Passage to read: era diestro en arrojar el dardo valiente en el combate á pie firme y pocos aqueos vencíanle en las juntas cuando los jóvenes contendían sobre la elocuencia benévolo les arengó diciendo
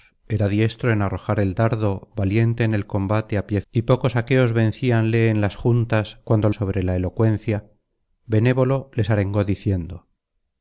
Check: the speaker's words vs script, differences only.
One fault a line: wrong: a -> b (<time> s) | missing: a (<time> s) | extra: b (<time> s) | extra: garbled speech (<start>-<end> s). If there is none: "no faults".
missing: firme (3.6 s)
missing: los jóvenes contendían (6.5 s)